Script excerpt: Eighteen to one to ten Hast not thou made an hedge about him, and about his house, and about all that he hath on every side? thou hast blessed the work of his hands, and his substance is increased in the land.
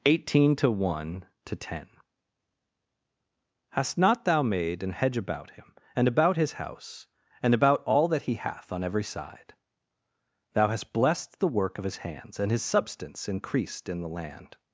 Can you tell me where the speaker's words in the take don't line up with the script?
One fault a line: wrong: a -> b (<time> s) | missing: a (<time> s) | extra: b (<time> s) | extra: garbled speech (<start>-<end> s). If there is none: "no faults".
missing: is (13.3 s)